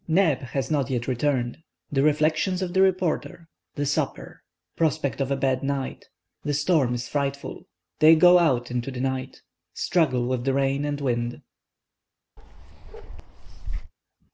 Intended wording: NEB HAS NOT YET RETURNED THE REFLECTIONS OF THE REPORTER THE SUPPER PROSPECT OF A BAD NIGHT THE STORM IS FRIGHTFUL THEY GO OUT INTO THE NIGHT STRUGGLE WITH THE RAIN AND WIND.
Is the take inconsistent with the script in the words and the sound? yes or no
yes